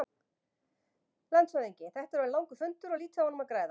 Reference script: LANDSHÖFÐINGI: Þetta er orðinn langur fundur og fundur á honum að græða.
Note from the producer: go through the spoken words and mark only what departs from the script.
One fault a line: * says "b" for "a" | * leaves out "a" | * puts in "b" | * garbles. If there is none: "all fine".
* says "lítið" for "fundur"